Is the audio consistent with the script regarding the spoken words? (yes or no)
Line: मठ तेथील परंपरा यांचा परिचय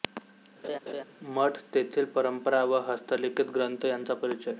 no